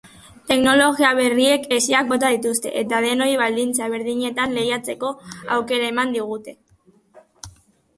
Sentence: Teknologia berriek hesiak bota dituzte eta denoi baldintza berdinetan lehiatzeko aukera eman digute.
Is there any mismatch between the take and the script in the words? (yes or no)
no